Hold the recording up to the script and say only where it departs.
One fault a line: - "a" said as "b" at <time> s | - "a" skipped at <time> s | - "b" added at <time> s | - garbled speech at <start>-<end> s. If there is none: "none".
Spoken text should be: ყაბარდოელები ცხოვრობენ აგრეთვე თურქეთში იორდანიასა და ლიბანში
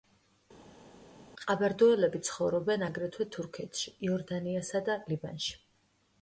none